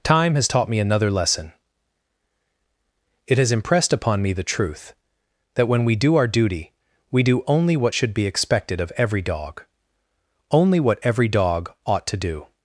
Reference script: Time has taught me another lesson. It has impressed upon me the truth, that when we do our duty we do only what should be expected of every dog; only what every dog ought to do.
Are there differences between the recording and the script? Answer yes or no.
no